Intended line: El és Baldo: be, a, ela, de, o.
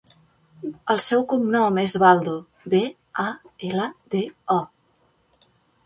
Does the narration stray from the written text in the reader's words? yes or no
yes